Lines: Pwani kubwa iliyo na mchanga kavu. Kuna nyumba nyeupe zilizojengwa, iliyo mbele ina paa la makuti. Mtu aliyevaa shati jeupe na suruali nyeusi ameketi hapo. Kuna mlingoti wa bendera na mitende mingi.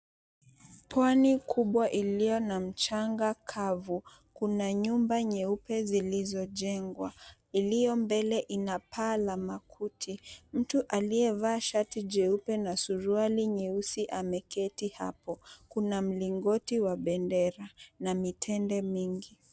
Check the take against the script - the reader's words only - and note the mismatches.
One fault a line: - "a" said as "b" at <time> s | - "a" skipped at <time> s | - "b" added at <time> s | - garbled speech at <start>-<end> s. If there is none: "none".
none